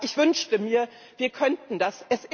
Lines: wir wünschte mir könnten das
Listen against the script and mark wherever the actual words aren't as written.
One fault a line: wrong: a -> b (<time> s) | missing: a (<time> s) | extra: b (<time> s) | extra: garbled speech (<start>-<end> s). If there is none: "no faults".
wrong: wir -> ich (0.0 s)
extra: wir (1.2 s)